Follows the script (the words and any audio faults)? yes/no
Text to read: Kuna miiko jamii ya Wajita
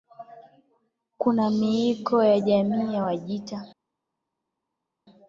no